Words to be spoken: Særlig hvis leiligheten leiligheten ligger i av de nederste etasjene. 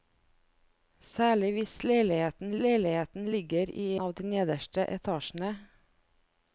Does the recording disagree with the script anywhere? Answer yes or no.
no